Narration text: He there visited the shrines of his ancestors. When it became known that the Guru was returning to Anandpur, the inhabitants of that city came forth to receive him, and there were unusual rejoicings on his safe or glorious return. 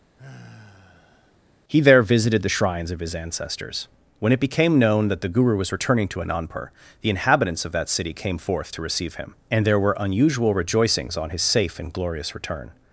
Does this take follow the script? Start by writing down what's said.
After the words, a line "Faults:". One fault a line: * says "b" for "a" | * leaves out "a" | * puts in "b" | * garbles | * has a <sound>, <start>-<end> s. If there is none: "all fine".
He there visited the shrines of his ancestors. When it became known that the Guru was returning to Anandpur, the inhabitants of that city came forth to receive him, and there were unusual rejoicings on his safe and glorious return.
Faults:
* has a sigh, 0.2-1.4 s
* says "and" for "or"